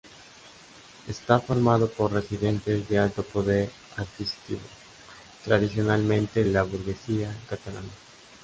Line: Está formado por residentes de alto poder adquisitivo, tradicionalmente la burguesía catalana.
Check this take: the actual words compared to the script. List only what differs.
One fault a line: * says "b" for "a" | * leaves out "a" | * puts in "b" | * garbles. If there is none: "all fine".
all fine